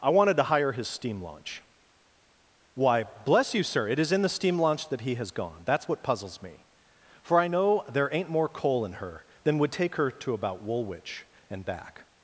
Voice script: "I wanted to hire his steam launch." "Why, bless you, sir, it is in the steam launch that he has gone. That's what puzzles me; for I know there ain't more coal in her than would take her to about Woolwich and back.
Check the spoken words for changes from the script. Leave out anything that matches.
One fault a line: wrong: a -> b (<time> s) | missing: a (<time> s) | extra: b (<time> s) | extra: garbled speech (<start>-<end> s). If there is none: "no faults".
no faults